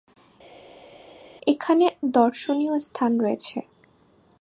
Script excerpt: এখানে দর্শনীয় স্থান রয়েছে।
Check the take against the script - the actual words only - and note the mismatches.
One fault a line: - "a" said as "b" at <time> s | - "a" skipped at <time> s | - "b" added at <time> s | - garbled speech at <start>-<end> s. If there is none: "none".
none